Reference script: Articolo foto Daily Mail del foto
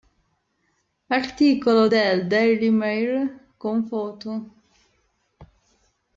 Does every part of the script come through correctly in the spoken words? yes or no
no